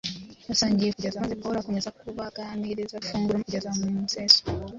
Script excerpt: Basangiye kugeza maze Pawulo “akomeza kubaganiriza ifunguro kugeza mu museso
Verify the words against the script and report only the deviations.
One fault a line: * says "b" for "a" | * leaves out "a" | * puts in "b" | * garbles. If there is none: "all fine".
all fine